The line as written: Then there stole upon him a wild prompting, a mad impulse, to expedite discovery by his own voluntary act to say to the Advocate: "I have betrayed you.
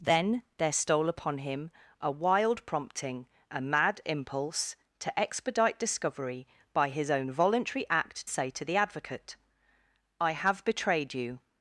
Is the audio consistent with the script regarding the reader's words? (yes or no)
no